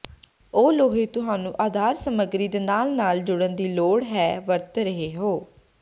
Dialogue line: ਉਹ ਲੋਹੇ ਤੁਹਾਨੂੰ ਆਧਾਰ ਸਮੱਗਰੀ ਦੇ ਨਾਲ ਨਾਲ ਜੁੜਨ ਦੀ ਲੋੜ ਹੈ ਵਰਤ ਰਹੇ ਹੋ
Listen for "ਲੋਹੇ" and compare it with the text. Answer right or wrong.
right